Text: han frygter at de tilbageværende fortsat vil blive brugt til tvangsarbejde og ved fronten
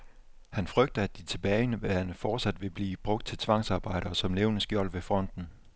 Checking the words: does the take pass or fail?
fail